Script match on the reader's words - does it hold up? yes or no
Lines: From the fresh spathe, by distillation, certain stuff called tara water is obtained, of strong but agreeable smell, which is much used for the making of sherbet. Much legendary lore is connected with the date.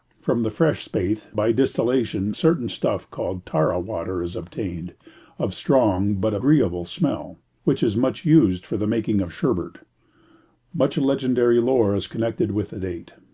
yes